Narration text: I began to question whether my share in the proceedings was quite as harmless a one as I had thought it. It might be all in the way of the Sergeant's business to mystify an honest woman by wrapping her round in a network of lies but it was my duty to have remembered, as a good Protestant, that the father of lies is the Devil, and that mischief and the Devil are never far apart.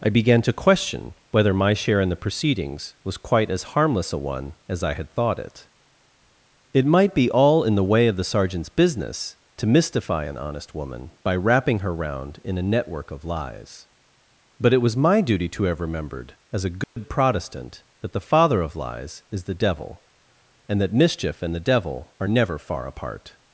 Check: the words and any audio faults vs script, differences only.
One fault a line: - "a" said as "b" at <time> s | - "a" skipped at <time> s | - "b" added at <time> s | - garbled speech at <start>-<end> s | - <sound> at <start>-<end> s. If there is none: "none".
- dropout at 16.8-17.0 s